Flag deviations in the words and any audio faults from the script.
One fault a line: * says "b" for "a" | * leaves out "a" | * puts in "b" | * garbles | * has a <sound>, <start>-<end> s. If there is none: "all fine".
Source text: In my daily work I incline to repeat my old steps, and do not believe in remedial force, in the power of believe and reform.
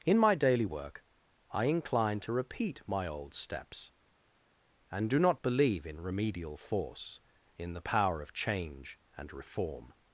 * says "change" for "believe"